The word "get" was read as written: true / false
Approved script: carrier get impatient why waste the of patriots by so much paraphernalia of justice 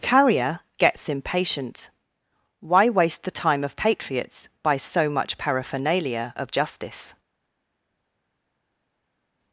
false